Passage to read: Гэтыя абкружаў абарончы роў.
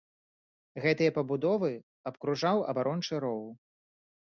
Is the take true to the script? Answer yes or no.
no